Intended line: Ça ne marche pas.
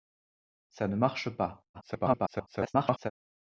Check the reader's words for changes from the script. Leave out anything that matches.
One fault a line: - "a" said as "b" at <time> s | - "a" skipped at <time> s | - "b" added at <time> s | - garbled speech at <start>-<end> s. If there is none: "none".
- garbled speech at 1.7-3.1 s